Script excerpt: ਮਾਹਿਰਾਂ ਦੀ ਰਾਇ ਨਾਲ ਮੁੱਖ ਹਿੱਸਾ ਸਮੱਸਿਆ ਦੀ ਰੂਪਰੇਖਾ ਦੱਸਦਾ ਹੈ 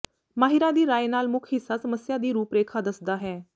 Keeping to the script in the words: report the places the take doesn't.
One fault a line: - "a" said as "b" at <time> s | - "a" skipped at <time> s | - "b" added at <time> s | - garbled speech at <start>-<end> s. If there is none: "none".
none